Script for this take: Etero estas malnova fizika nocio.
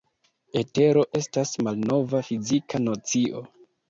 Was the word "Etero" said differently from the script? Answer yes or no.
no